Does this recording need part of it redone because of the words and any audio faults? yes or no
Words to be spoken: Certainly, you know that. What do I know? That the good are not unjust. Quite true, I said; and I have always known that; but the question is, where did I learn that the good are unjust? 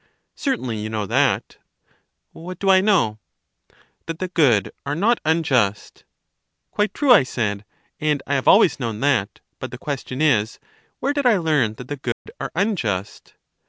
yes